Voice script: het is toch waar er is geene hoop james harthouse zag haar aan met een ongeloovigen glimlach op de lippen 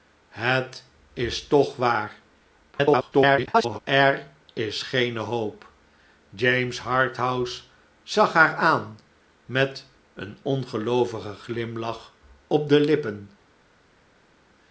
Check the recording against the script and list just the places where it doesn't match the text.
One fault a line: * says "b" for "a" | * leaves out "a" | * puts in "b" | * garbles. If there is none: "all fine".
* garbles